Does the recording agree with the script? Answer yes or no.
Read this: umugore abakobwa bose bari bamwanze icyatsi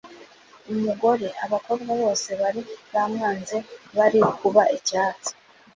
no